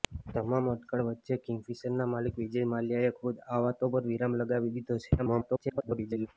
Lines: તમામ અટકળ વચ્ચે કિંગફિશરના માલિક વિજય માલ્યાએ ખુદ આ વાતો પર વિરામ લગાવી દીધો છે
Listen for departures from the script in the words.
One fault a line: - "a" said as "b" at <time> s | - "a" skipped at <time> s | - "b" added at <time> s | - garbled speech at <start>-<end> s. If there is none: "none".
- garbled speech at 5.2-6.3 s